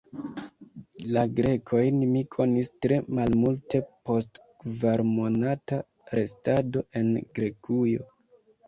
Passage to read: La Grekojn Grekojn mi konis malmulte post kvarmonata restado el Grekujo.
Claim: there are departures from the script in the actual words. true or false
true